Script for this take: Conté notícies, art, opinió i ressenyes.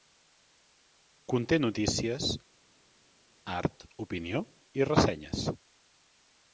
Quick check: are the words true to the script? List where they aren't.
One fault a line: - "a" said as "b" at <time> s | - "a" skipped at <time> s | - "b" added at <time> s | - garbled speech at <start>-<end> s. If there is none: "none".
none